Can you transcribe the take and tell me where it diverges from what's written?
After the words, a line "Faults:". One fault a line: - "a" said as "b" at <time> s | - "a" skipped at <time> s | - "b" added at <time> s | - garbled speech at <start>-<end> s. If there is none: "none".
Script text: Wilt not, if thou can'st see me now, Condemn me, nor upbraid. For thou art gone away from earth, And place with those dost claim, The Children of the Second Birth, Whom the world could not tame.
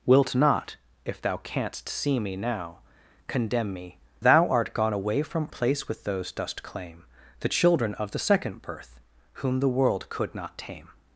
Wilt not, if thou can'st see me now, Condemn me, thou art gone away from place with those dost claim, The Children of the Second Birth, Whom the world could not tame.
Faults:
- "nor upbraid For" skipped at 4.0 s
- "earth And" skipped at 5.5 s